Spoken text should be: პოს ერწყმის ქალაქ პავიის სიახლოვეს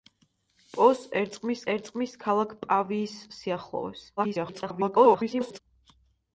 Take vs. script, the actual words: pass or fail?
fail